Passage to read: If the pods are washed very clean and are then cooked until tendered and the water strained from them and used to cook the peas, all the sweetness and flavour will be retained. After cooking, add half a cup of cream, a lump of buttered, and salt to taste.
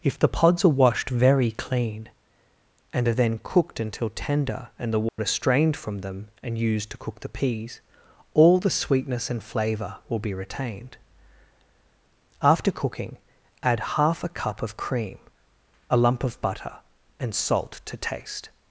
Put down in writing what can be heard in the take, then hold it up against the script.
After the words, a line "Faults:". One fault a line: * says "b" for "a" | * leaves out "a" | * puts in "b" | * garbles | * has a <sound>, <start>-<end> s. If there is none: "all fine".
If the pods are washed very clean and are then cooked until tender and the water strained from them and used to cook the peas, all the sweetness and flavour will be retained. After cooking, add half a cup of cream, a lump of butter, and salt to taste.
Faults:
* says "tender" for "tendered"
* has a dropout, 5.1-5.2 s
* says "butter" for "buttered"